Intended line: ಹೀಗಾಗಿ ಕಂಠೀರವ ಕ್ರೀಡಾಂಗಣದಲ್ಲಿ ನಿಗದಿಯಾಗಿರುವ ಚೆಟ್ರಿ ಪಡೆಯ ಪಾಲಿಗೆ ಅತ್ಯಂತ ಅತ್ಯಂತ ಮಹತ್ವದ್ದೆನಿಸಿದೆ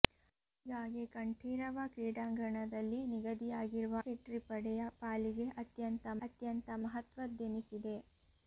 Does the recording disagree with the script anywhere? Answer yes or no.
no